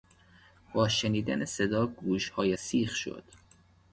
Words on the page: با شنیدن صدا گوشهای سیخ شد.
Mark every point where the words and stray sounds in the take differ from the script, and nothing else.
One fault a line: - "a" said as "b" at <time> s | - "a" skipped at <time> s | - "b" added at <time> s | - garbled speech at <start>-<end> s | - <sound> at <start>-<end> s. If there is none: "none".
none